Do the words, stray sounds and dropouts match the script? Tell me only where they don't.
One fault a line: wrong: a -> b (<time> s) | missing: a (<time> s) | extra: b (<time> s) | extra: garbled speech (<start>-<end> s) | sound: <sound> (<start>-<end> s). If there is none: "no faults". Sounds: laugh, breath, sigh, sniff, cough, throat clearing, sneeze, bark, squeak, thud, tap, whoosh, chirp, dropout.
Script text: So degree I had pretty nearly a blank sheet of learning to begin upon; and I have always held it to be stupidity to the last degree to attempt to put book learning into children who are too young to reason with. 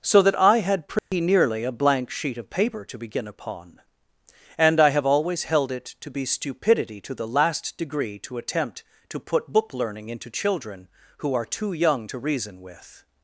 wrong: degree -> that (0.2 s)
sound: dropout (1.0-1.1 s)
wrong: learning -> paper (2.5 s)